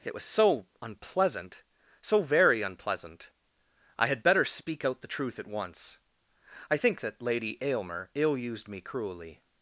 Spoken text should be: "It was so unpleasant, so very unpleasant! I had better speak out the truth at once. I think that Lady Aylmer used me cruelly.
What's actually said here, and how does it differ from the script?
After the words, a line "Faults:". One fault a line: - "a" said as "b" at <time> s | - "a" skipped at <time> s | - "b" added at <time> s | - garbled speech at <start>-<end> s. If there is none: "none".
"It was so unpleasant, so very unpleasant! I had better speak out the truth at once. I think that Lady Aylmer ill used me cruelly.
Faults:
- "ill" added at 8.1 s